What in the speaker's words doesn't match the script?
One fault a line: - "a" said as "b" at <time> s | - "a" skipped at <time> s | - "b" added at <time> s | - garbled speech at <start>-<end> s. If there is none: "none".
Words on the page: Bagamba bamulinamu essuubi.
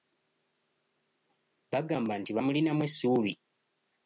- "nti" added at 2.2 s